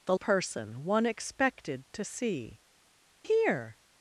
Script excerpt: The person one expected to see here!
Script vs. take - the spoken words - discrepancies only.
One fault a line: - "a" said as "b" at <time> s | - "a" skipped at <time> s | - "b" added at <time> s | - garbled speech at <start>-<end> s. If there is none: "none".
none